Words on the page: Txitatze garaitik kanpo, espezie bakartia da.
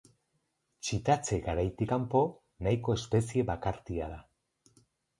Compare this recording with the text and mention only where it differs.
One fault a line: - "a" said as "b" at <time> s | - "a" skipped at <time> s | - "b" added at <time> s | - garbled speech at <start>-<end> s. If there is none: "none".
- "nahiko" added at 2.7 s